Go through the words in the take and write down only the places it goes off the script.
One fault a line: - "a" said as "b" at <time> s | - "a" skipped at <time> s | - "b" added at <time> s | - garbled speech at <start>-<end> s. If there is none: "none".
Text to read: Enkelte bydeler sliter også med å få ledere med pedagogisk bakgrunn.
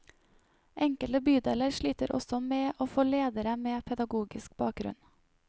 none